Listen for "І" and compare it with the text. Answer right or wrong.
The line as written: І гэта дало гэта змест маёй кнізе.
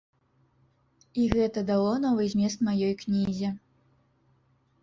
right